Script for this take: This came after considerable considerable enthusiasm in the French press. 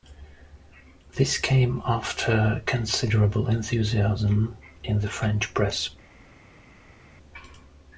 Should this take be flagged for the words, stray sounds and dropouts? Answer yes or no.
yes